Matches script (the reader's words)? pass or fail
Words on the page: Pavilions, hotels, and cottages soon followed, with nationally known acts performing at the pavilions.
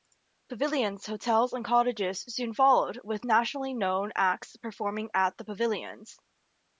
pass